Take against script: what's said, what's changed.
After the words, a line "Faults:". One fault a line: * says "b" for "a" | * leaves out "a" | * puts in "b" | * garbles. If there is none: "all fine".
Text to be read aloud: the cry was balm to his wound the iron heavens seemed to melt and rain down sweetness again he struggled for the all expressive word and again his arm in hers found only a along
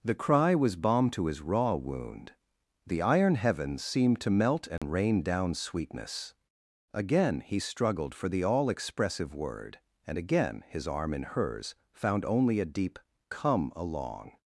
the cry was balm to his raw wound the iron heavens seemed to melt and rain down sweetness again he struggled for the all expressive word and again his arm in hers found only a deep come along
Faults:
* puts in "raw"
* puts in "deep come"